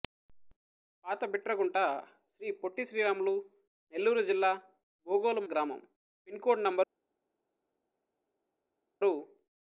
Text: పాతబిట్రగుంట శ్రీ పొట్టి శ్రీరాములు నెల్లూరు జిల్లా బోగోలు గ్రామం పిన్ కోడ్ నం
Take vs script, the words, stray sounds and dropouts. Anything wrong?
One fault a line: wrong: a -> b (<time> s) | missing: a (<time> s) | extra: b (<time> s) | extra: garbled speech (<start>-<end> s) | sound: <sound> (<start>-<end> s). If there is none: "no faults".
no faults